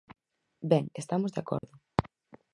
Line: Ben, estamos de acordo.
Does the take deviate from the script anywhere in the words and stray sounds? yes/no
yes